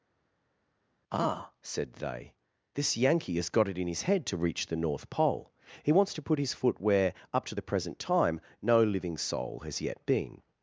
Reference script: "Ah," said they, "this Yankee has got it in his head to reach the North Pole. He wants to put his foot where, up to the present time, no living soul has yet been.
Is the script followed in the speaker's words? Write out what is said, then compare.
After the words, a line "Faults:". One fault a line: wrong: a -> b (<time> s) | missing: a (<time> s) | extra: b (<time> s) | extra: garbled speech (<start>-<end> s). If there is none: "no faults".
"Ah," said they, "this Yankee has got it in his head to reach the North Pole. He wants to put his foot where, up to the present time, no living soul has yet been.
Faults:
no faults